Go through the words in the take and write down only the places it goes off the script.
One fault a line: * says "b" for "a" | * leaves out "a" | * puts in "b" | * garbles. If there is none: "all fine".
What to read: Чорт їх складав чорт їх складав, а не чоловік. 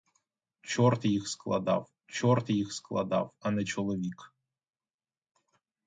all fine